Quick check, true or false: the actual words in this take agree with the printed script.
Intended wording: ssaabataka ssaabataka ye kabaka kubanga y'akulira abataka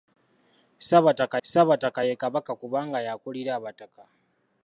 true